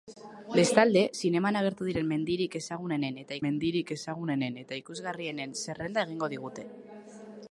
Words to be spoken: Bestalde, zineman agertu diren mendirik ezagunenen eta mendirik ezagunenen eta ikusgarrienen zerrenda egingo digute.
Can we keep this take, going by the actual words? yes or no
yes